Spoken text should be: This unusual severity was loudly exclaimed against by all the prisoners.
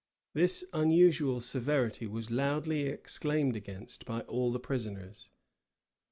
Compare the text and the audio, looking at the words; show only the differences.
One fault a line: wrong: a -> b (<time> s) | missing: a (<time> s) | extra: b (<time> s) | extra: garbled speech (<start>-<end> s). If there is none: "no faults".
no faults